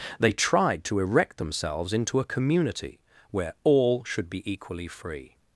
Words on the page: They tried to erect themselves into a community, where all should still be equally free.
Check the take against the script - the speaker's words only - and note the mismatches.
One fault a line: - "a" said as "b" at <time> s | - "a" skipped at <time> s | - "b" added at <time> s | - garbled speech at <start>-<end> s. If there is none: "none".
- "still" skipped at 4.3 s